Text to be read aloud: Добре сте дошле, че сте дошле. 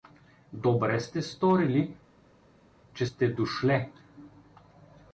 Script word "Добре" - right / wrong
right